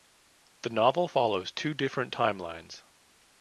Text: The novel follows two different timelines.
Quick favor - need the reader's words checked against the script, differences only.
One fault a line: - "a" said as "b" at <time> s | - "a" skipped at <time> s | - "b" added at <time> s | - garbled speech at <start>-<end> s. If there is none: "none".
none